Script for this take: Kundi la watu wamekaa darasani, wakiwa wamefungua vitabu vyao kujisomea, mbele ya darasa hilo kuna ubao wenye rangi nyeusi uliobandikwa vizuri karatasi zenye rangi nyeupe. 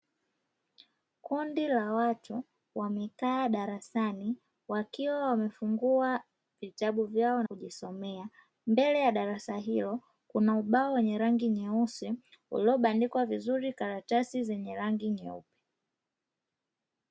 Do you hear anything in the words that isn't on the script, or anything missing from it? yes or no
no